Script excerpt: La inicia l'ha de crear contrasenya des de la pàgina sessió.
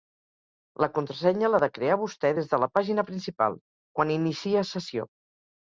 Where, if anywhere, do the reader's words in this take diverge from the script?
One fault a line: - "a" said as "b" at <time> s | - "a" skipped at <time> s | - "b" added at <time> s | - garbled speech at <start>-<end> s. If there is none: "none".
- "inicia" said as "contrasenya" at 0.9 s
- "contrasenya" said as "vostè" at 2.0 s
- "principal quan inicia" added at 3.1 s